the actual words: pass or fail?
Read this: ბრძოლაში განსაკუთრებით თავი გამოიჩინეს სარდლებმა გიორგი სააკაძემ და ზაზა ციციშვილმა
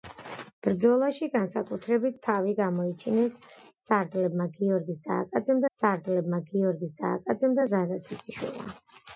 fail